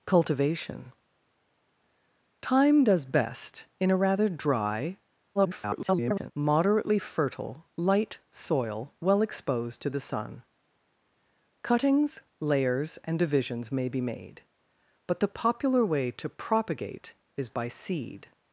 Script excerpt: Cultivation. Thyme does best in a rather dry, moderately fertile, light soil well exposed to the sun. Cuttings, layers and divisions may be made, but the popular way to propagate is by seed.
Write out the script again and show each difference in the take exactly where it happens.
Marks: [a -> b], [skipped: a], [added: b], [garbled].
Cultivation. Thyme does best in a rather dry, [garbled] moderately fertile, light soil well exposed to the sun. Cuttings, layers and divisions may be made, but the popular way to propagate is by seed.